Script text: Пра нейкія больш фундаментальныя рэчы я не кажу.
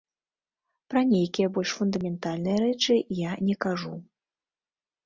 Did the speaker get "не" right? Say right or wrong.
right